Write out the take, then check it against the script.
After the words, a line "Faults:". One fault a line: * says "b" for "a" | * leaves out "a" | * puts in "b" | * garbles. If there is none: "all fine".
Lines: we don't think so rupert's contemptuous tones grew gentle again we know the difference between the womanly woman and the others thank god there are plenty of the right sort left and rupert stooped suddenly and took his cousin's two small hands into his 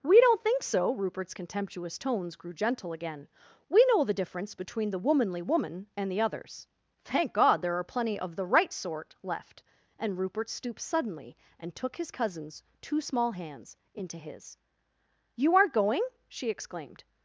we don't think so rupert's contemptuous tones grew gentle again we know the difference between the womanly woman and the others thank god there are plenty of the right sort left and rupert stooped suddenly and took his cousin's two small hands into his you aren't going she exclaimed
Faults:
* puts in "you aren't going she exclaimed"